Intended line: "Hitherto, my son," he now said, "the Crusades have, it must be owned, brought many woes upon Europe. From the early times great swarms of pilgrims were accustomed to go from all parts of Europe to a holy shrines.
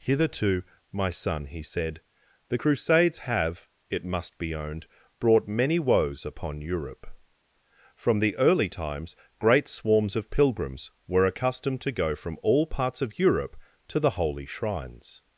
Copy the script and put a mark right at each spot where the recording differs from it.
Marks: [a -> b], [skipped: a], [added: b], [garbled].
"Hitherto, my son," he [skipped: now] said, "the Crusades have, it must be owned, brought many woes upon Europe. From the early times great swarms of pilgrims were accustomed to go from all parts of Europe to [a -> the] holy shrines.